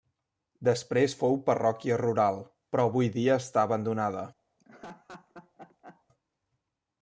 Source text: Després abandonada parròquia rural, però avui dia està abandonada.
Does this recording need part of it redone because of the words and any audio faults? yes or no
yes